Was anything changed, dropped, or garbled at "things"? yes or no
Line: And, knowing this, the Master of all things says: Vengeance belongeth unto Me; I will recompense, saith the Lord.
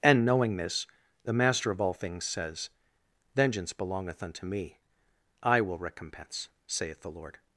no